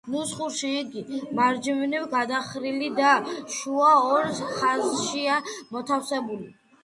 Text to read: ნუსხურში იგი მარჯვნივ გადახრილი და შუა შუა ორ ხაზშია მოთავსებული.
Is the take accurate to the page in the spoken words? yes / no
no